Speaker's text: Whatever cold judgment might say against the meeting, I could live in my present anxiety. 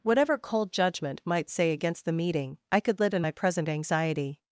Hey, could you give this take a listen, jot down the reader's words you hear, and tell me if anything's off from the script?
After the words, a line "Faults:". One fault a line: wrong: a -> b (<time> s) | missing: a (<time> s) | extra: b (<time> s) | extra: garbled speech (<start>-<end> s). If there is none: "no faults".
Whatever cold judgment might say against the meeting, I could live in my present anxiety.
Faults:
no faults